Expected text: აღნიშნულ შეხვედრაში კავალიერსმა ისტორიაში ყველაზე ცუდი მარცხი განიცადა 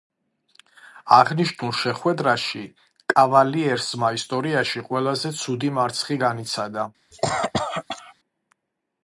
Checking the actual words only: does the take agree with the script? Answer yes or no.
yes